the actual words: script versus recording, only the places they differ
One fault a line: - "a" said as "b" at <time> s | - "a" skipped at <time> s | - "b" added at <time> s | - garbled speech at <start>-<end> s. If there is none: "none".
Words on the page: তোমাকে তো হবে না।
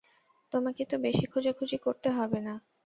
- "বেশি খোঁজাখুঁজি করতে" added at 1.1 s